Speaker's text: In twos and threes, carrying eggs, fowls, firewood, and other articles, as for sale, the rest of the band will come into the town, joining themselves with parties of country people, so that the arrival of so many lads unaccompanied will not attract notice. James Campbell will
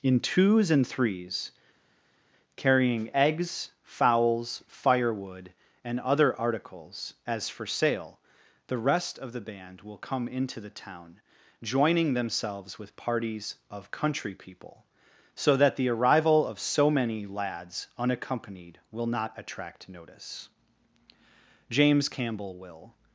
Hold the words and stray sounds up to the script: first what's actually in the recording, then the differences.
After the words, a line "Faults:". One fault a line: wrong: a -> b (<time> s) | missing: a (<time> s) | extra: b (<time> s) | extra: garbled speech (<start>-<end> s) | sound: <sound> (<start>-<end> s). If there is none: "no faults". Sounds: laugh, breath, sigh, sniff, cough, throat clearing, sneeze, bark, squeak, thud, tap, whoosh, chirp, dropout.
In twos and threes, carrying eggs, fowls, firewood, and other articles, as for sale, the rest of the band will come into the town, joining themselves with parties of country people, so that the arrival of so many lads unaccompanied will not attract notice. James Campbell will
Faults:
no faults